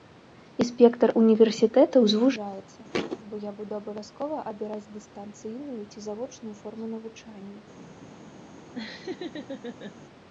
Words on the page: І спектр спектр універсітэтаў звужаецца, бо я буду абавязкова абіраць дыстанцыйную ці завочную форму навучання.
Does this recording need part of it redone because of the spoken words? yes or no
yes